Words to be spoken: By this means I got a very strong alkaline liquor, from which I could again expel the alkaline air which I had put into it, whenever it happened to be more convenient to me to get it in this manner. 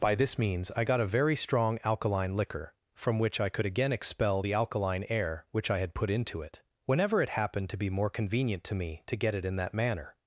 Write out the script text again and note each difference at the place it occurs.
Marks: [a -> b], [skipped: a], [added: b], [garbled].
By this means I got a very strong alkaline liquor, from which I could again expel the alkaline air which I had put into it, whenever it happened to be more convenient to me to get it in [this -> that] manner.